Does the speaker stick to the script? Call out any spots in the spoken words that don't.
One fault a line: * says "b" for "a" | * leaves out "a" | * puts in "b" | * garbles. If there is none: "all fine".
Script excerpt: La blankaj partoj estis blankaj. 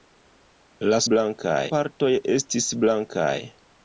all fine